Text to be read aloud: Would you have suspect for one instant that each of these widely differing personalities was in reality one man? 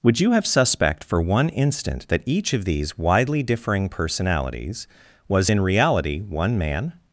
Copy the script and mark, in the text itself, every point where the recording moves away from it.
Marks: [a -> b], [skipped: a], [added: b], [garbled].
Would you have suspect for one instant that each of these widely differing personalities was in reality one man?